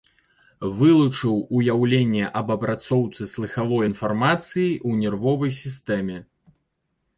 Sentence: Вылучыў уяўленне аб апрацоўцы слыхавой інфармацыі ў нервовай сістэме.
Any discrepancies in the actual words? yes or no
no